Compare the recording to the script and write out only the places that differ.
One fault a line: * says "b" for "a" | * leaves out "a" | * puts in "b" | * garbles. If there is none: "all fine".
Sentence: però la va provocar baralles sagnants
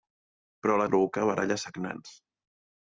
all fine